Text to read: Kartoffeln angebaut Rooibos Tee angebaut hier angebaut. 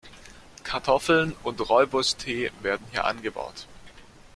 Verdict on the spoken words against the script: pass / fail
fail